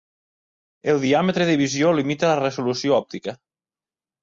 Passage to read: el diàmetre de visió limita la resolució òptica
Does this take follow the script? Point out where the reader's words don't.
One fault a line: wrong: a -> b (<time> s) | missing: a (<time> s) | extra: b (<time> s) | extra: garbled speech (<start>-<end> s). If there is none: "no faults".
no faults